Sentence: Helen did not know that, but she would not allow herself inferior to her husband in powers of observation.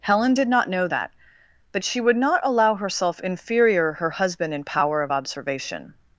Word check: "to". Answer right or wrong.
wrong